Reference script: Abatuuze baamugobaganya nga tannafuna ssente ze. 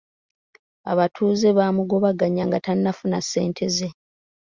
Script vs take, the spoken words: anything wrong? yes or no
no